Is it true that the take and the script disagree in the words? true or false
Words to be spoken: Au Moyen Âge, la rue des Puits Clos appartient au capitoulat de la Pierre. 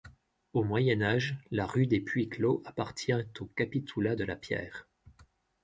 false